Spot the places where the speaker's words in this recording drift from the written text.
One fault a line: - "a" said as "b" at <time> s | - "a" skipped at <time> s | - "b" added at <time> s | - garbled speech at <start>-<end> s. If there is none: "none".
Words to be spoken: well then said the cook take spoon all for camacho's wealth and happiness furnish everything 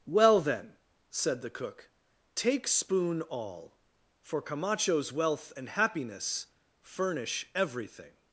none